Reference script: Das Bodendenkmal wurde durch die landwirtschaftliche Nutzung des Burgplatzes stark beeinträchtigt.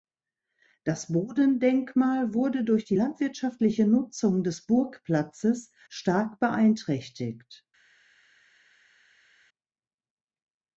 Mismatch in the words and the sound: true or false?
false